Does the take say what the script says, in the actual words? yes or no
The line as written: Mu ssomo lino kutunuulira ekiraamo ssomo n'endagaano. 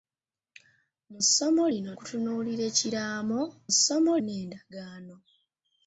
yes